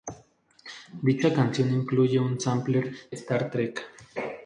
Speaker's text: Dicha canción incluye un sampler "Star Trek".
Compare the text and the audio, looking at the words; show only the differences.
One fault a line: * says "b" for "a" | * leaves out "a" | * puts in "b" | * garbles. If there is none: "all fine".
all fine